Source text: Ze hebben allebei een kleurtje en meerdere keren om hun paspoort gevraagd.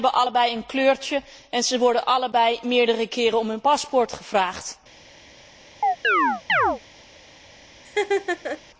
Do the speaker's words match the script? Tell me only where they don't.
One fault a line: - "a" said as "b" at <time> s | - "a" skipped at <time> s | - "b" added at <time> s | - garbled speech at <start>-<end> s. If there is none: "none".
- "ze worden allebei" added at 1.6 s